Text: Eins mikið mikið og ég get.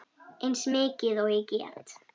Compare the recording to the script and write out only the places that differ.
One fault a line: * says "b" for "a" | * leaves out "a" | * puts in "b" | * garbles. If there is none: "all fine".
* leaves out "mikið"